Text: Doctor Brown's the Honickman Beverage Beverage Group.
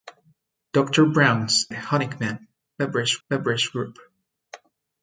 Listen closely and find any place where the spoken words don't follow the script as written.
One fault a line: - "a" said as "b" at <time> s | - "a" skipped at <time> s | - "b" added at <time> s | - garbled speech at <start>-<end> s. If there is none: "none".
none